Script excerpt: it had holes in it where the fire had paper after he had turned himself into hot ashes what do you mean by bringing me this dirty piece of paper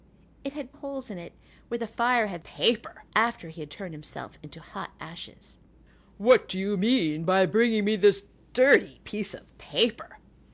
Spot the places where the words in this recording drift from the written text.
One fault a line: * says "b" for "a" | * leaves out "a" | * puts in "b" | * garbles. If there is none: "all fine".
all fine